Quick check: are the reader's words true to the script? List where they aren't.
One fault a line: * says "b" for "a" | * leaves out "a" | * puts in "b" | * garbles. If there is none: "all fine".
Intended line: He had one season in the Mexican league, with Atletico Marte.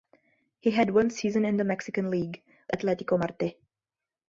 * leaves out "with"